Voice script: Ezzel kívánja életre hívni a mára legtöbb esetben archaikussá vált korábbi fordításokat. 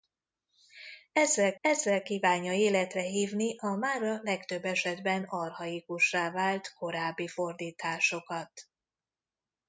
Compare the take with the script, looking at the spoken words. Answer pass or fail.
fail